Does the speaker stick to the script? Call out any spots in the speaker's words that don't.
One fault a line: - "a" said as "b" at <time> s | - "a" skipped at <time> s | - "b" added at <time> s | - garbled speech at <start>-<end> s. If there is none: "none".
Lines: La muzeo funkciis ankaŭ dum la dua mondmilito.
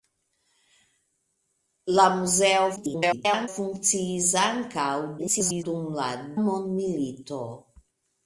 - garbled speech at 2.8-3.5 s
- garbled speech at 5.2-5.6 s
- "dua" skipped at 6.1 s